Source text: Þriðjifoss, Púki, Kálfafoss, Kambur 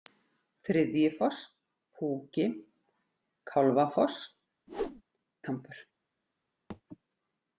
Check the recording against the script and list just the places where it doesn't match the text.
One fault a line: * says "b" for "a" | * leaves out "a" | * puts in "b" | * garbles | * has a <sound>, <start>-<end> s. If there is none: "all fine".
* has a whoosh, 4.7-5.0 s
* has a thud, 6.7-6.8 s